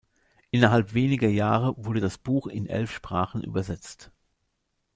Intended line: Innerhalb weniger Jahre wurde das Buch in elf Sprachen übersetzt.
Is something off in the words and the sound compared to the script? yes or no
no